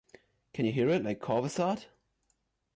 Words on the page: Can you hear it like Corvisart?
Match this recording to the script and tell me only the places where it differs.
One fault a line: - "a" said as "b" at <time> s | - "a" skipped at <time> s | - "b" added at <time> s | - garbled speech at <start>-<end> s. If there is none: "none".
none